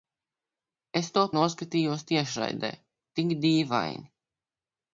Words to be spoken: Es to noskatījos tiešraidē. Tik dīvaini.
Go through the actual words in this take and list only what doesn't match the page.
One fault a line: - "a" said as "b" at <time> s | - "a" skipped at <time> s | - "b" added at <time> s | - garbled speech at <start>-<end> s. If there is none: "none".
none